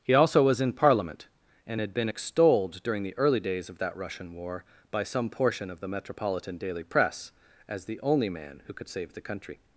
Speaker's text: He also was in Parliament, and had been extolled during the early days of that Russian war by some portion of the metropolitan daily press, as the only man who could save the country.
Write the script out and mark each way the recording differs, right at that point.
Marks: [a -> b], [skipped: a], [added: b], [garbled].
He also was in Parliament, and had been extolled during the early days of that Russian war by some portion of the metropolitan daily press, as the only man who could save the country.